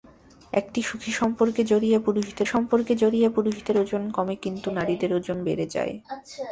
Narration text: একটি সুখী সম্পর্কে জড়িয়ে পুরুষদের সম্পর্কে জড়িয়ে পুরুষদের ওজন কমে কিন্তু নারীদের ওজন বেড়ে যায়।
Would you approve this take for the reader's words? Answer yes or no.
yes